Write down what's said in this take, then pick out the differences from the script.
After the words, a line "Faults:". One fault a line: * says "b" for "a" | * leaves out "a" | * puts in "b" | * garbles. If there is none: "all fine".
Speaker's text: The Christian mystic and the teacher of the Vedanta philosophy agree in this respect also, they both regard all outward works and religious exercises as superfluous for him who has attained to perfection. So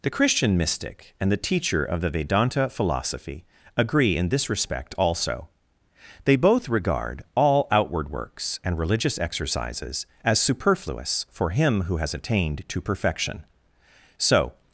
The Christian mystic and the teacher of the Vedanta philosophy agree in this respect also, they both regard all outward works and religious exercises as superfluous for him who has attained to perfection. So
Faults:
all fine